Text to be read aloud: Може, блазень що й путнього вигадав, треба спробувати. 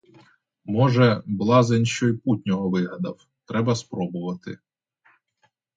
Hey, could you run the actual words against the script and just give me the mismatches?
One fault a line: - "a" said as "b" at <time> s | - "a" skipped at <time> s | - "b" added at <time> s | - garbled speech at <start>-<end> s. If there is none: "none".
none